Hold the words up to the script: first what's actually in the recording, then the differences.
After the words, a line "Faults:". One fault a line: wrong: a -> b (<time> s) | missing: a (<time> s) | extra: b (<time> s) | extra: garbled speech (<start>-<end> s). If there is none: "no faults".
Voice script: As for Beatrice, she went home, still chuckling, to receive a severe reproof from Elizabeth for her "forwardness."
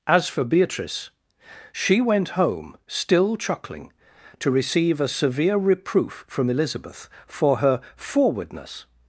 As for Beatrice, she went home, still chuckling, to receive a severe reproof from Elizabeth for her "forwardness."
Faults:
no faults